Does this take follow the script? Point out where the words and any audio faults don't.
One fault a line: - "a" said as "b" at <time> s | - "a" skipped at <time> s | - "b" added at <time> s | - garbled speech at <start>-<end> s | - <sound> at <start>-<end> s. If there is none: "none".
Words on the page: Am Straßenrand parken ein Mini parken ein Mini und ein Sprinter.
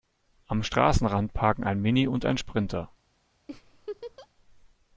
- "parken ein Mini" skipped at 2.1 s
- laugh at 3.5-4.3 s